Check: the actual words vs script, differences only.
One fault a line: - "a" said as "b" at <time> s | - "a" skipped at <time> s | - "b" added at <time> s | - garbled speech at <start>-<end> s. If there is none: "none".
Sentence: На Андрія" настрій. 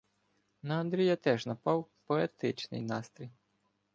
- "теж напав поетичний" added at 1.1 s